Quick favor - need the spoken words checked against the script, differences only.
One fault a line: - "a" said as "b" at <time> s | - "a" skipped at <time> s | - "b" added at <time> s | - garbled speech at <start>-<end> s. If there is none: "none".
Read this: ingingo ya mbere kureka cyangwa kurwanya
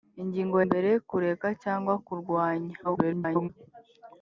- "ya" skipped at 0.6 s
- garbled speech at 2.8-3.5 s